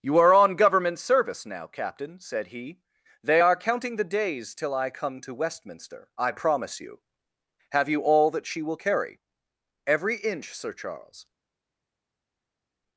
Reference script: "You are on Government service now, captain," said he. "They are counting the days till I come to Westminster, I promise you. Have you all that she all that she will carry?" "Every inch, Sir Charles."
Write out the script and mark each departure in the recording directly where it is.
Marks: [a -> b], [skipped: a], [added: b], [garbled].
"You are on Government service now, captain," said he. "They are counting the days till I come to Westminster, I promise you. Have you all that she [skipped: all that she] will carry?" "Every inch, Sir Charles."